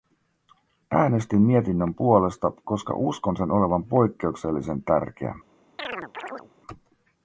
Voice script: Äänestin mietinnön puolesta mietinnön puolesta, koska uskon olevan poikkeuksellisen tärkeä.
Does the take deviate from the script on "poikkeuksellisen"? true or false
false